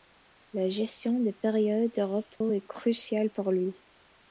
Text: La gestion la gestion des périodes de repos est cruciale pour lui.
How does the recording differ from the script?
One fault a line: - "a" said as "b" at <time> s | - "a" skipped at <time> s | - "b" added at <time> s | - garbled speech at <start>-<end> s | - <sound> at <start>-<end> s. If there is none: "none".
- "la gestion" skipped at 1.2 s
- dropout at 2.4-2.4 s